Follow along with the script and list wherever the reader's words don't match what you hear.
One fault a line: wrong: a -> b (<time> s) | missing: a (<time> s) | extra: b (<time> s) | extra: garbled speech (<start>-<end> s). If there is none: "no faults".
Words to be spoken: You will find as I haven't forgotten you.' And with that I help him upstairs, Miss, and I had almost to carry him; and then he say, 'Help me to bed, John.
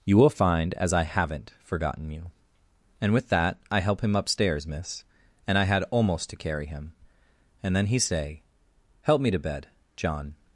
no faults